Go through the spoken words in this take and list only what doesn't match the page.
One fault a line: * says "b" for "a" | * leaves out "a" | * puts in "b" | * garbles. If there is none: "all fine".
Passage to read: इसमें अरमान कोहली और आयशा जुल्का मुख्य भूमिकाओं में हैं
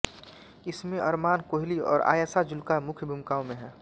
all fine